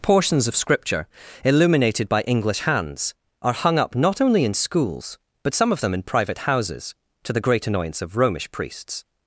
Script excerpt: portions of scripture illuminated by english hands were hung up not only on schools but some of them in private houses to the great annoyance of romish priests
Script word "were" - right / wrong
wrong